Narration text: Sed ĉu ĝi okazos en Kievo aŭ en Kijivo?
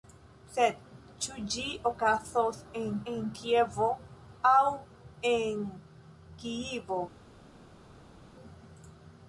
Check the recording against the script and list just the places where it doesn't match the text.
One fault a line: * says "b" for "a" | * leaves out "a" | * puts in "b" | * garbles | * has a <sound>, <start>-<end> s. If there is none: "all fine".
* puts in "en"